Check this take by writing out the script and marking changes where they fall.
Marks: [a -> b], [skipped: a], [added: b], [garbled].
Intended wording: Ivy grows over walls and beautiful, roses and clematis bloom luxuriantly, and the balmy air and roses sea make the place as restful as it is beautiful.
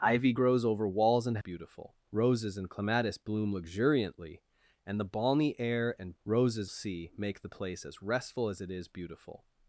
Ivy grows over walls and beautiful, roses and clematis bloom luxuriantly, and the balmy air and roses sea make the place as restful as it is beautiful.